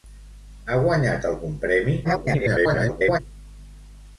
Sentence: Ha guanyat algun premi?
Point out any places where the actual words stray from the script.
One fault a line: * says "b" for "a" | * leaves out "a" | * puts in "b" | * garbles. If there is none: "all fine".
* garbles